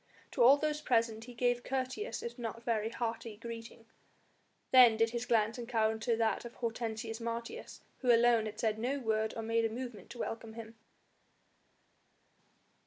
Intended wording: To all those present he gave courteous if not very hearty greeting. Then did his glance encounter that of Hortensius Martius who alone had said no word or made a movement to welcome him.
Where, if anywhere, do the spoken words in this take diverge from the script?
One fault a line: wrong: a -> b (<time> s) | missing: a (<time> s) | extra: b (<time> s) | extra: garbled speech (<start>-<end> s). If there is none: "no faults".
no faults